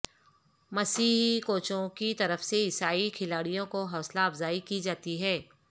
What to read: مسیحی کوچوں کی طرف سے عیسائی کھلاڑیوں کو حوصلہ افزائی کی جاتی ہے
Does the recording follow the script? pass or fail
pass